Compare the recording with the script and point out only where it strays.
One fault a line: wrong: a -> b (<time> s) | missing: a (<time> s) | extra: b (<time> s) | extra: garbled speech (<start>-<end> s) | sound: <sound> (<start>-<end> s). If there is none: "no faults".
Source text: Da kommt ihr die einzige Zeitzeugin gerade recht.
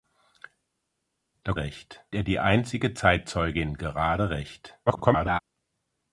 wrong: kommt -> recht (1.6 s)
extra: garbled speech (4.9-5.4 s)